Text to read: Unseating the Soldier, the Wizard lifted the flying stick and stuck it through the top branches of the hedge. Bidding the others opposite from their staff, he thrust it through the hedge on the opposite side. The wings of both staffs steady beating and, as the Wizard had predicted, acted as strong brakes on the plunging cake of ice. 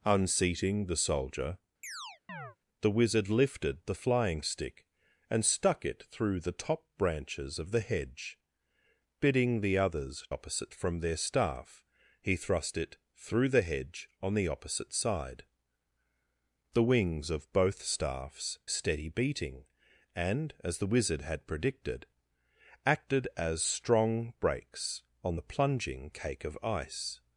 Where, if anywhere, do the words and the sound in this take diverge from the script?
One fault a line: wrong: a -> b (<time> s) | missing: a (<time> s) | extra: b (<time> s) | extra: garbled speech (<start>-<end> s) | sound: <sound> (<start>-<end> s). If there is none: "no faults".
sound: chirp (1.8-2.6 s)